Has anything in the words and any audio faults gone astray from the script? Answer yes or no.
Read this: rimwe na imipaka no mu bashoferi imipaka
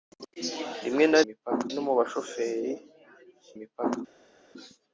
no